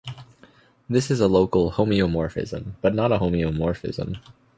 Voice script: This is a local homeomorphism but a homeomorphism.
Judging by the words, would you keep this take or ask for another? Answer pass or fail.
fail